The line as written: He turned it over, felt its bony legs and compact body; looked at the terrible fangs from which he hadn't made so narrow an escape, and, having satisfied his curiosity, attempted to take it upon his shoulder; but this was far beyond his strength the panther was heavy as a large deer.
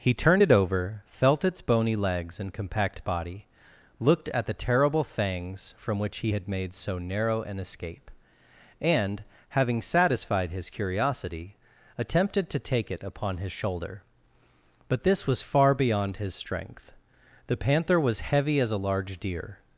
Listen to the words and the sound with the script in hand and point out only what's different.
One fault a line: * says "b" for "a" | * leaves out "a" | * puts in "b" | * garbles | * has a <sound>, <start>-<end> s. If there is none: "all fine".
* says "had" for "hadn't"